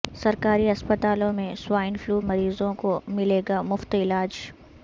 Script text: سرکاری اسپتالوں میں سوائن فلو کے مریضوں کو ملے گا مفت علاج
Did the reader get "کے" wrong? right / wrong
wrong